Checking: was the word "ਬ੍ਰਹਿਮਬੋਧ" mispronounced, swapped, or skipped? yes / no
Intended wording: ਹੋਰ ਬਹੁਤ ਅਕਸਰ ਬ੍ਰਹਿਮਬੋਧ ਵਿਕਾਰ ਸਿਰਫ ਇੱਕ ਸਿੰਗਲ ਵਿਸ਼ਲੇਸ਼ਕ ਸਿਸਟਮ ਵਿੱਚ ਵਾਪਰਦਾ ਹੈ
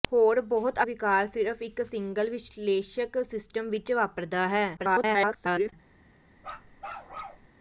yes